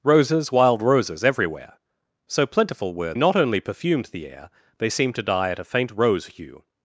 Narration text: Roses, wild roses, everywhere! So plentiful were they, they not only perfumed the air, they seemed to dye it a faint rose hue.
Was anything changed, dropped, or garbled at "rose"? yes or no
no